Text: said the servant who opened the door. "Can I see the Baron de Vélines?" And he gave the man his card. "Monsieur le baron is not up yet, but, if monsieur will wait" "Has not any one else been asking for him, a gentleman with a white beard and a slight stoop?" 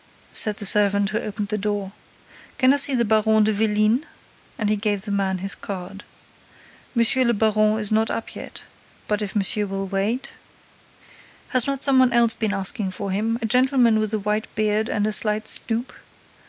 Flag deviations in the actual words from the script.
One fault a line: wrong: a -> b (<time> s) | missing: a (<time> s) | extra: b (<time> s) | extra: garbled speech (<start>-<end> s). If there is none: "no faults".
wrong: any -> some (11.8 s)